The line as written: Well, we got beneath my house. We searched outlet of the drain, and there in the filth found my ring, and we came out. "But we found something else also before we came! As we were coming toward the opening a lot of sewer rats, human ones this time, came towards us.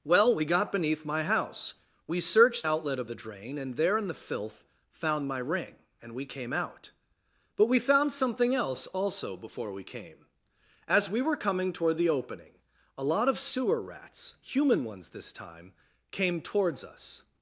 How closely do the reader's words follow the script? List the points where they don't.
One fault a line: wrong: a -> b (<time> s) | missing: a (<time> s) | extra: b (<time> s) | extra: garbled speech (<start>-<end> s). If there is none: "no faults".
no faults